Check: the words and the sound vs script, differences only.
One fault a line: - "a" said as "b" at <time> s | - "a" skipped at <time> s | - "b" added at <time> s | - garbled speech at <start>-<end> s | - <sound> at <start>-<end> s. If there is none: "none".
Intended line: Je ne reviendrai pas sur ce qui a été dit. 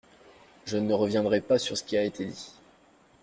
none